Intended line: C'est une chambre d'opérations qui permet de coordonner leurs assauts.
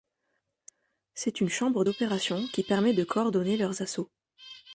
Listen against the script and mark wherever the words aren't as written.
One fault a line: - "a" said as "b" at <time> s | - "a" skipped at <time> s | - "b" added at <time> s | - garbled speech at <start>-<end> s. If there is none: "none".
none